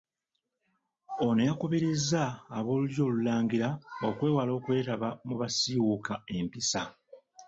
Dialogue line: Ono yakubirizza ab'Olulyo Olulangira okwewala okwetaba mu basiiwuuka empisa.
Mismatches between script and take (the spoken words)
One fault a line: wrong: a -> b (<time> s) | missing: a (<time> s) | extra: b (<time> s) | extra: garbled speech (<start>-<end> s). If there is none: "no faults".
no faults